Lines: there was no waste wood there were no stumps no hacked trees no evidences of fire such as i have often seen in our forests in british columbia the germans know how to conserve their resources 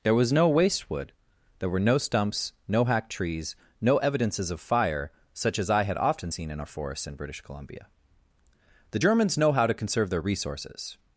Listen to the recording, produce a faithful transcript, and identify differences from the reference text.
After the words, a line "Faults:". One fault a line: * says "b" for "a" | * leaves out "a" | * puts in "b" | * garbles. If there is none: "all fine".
there was no waste wood there were no stumps no hacked trees no evidences of fire such as i had often seen in our forests in british columbia the germans know how to conserve their resources
Faults:
* says "had" for "have"